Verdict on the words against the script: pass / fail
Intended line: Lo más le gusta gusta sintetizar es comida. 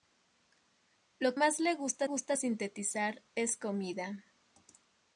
pass